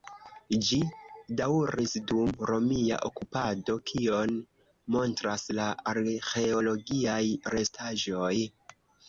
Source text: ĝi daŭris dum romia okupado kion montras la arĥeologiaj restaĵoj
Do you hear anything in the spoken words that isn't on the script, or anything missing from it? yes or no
no